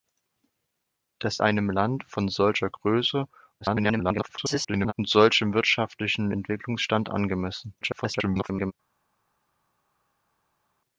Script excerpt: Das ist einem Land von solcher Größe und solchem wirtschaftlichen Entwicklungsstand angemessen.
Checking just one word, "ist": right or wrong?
wrong